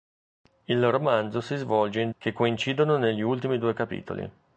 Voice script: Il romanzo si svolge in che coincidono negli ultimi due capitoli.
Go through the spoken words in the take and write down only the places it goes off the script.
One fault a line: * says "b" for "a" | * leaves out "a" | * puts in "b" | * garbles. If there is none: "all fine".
all fine